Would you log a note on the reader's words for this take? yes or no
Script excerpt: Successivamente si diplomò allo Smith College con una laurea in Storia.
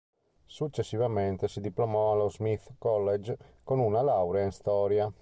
no